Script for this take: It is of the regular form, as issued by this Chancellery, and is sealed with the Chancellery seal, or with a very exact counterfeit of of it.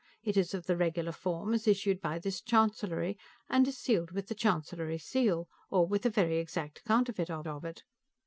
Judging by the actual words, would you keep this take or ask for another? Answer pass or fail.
pass